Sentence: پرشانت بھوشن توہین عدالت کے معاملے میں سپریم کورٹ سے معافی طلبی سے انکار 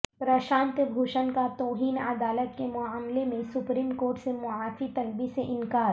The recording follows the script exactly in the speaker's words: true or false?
false